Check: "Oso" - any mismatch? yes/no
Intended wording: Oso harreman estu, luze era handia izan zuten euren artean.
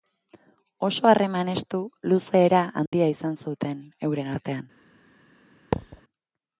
no